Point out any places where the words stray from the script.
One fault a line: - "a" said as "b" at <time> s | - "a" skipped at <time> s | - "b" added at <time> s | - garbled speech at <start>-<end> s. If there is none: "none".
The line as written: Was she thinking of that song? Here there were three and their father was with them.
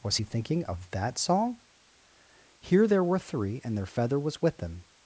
- "she" said as "he" at 0.1 s
- "father" said as "feather" at 3.8 s